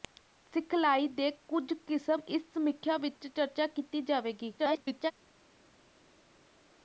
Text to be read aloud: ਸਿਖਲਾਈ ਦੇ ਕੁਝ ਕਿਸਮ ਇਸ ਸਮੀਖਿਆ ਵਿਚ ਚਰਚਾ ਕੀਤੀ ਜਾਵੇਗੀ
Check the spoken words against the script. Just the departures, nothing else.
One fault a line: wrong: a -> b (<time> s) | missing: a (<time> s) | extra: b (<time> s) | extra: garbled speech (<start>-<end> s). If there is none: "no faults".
extra: garbled speech (4.6-5.1 s)